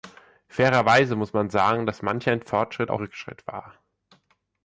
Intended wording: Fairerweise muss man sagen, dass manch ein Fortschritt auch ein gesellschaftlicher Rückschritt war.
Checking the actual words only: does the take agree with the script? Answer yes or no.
no